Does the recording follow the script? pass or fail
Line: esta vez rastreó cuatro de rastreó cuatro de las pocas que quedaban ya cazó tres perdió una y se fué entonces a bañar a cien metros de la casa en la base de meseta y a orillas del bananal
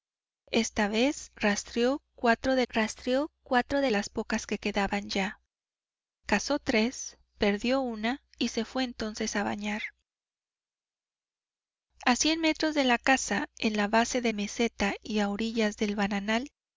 pass